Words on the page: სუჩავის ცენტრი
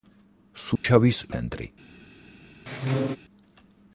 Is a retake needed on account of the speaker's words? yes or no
no